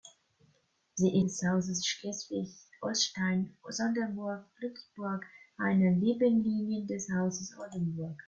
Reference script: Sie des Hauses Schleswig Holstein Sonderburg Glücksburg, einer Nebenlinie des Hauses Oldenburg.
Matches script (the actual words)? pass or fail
pass